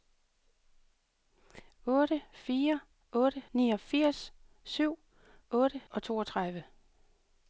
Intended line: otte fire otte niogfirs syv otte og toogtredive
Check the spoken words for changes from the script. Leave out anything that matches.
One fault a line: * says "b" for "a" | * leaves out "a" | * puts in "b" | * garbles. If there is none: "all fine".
all fine